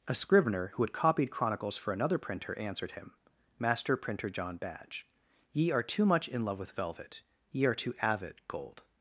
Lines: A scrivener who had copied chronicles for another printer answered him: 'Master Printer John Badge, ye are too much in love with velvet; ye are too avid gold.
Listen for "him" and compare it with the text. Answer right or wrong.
right